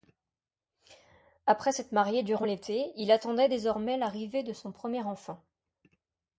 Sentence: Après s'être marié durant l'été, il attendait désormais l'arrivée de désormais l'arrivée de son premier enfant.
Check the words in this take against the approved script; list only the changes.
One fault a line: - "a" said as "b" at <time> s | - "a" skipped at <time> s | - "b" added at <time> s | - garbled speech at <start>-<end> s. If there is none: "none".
- "désormais l'arrivée de" skipped at 4.5 s